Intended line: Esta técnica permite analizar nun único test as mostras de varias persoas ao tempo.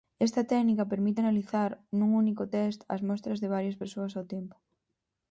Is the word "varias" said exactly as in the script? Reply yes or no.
yes